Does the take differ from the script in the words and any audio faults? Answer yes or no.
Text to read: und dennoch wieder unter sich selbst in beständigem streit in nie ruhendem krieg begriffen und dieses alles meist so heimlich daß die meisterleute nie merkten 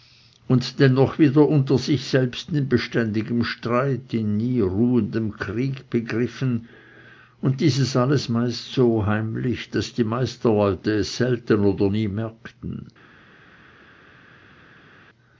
yes